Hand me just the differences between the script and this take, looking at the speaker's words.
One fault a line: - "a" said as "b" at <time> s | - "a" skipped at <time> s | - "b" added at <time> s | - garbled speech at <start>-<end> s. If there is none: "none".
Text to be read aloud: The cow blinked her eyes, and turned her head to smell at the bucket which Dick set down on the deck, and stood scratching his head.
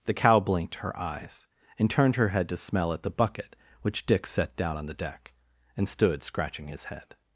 none